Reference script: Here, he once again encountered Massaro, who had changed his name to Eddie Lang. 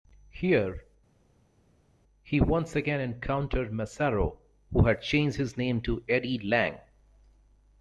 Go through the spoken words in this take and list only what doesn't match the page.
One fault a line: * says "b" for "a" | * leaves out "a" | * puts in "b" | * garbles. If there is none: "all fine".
all fine